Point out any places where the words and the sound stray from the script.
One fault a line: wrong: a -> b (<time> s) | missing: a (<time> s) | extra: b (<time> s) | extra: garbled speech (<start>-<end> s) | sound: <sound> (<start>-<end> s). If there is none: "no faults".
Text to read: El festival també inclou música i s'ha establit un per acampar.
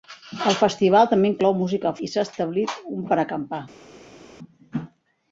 no faults